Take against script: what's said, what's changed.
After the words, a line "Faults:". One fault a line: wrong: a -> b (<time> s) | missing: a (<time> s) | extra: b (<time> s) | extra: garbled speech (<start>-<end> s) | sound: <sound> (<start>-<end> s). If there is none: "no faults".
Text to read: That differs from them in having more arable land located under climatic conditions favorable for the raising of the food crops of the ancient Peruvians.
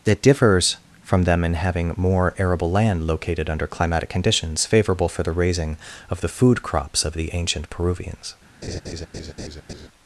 That differs from them in having more arable land located under climatic conditions favorable for the raising of the food crops of the ancient Peruvians.
Faults:
sound: laugh (8.6-9.9 s)